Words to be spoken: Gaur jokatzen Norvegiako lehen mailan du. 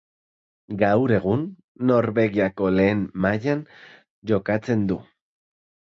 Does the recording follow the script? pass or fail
fail